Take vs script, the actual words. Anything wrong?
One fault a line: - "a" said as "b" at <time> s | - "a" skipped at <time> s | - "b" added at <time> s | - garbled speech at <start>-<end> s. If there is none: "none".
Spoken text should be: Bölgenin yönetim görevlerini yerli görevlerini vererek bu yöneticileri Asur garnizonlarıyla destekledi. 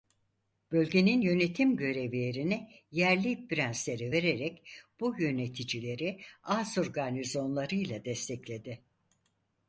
- "görevlerini" said as "prenslere" at 3.5 s